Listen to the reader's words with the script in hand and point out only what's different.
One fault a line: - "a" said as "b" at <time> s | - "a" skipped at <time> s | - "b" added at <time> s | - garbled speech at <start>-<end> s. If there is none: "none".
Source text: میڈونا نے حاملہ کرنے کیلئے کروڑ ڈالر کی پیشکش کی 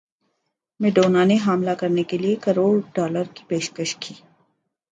none